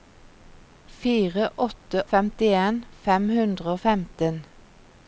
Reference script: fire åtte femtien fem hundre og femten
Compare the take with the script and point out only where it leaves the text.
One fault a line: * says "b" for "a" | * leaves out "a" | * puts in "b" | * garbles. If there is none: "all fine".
all fine